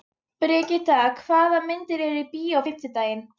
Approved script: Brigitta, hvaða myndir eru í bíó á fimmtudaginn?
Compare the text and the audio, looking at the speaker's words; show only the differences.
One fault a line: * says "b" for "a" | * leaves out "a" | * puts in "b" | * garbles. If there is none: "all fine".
all fine